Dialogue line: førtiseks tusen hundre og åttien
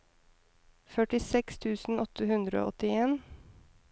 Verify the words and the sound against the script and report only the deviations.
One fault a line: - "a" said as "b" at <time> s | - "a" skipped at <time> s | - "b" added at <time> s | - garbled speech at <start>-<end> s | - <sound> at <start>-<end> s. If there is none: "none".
- "åtte" added at 2.0 s